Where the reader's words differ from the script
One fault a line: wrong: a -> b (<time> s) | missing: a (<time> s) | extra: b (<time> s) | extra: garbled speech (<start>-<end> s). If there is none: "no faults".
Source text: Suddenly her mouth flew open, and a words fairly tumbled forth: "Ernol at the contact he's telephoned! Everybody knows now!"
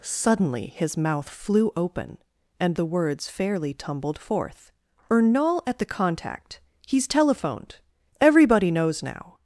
wrong: her -> his (0.7 s)
wrong: a -> the (2.8 s)